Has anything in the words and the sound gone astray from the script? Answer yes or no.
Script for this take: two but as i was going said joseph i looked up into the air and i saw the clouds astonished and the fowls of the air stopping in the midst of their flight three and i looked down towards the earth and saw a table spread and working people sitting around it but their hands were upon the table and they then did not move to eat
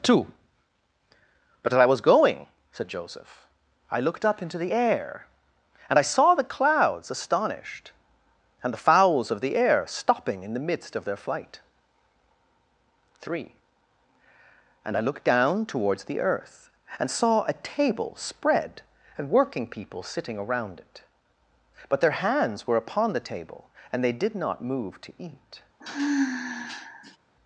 yes